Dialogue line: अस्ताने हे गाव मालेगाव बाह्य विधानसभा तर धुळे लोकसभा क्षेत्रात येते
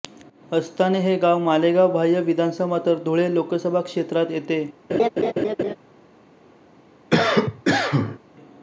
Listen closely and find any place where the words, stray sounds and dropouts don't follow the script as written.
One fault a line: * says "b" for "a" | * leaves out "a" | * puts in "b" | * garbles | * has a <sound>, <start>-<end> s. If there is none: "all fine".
* has a laugh, 4.9-5.8 s
* has a cough, 7.1-8.2 s